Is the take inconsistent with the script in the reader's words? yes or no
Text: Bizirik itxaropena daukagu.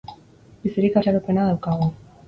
no